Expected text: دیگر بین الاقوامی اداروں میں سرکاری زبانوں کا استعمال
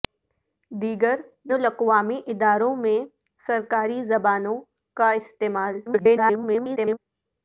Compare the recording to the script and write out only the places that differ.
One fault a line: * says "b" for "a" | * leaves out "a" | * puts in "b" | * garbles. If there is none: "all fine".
* leaves out "بین"
* garbles